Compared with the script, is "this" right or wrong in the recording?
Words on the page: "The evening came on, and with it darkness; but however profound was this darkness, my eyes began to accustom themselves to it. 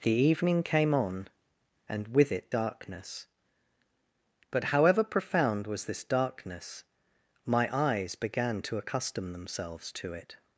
right